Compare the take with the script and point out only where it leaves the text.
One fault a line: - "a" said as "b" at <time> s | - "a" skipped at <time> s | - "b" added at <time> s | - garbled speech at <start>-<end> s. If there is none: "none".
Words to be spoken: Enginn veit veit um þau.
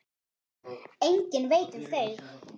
- "veit" skipped at 1.8 s